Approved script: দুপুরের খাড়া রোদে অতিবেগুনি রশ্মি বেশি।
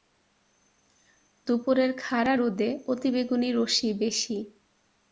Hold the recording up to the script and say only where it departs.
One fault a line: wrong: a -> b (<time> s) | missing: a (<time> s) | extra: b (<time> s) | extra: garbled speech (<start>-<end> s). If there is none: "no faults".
no faults